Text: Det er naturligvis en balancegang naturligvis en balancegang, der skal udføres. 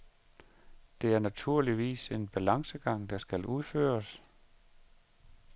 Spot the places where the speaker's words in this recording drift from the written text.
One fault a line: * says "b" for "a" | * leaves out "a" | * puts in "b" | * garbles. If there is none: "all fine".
* leaves out "naturligvis en balancegang"